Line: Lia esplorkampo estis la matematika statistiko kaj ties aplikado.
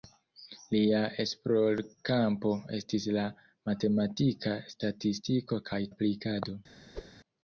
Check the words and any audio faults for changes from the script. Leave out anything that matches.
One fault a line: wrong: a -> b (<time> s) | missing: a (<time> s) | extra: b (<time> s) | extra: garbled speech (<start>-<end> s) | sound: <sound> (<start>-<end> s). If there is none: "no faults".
missing: ties (5.8 s)
sound: whoosh (6.9-7.1 s)